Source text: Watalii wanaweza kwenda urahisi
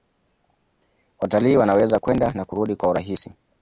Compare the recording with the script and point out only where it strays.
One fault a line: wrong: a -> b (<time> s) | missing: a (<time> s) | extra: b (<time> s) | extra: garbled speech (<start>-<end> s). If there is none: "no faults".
extra: na kurudi kwa (2.3 s)